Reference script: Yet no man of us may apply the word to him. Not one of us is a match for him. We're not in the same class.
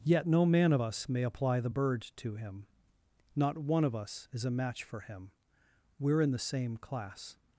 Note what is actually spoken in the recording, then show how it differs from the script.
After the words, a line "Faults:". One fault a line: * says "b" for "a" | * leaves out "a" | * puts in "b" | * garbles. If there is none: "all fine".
Yet no man of us may apply the bird to him. Not one of us is a match for him. We're in the same class.
Faults:
* says "bird" for "word"
* leaves out "not"